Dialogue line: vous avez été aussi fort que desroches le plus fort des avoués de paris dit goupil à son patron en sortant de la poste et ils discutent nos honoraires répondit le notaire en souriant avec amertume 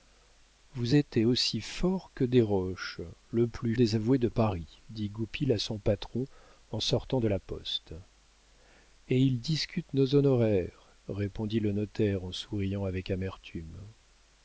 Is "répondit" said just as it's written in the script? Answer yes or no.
yes